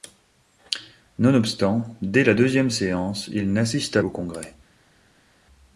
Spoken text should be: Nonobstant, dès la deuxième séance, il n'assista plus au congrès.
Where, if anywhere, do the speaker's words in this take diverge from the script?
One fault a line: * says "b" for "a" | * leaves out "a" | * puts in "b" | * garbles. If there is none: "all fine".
* leaves out "plus"